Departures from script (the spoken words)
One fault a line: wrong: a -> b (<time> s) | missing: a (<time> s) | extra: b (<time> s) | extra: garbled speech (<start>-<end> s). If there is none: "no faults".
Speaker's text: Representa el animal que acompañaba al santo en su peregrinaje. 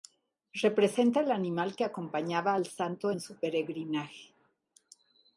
no faults